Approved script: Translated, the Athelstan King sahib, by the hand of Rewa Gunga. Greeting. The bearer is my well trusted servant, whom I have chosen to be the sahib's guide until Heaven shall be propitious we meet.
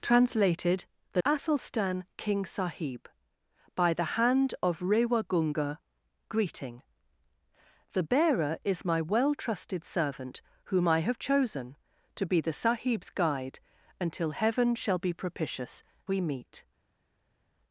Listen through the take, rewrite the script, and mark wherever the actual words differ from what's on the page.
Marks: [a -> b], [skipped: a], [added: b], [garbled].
Translated, the Athelstan King sahib, by the hand of Rewa Gunga. Greeting. The bearer is my well trusted servant, whom I have chosen to be the sahib's guide until Heaven shall be propitious we meet.